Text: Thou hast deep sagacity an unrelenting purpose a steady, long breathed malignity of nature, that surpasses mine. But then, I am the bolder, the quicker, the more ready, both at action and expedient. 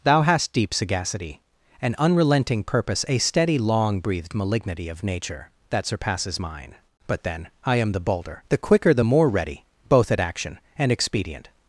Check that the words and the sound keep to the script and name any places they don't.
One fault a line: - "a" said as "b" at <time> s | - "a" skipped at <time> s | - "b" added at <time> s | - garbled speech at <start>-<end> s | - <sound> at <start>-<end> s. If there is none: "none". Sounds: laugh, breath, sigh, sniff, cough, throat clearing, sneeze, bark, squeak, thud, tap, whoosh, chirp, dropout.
none